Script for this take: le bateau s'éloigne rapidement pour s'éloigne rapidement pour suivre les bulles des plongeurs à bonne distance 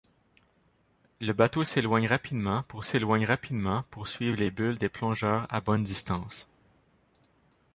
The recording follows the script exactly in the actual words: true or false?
true